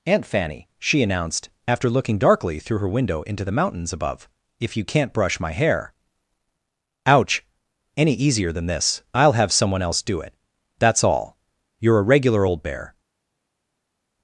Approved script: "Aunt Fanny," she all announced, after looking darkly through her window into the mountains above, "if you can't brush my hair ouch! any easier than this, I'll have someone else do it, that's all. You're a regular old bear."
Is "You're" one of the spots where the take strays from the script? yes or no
no